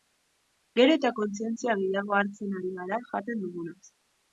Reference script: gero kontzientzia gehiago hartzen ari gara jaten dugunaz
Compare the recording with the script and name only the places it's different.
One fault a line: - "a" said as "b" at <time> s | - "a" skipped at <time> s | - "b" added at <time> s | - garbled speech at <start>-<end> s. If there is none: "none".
- "eta" added at 1.0 s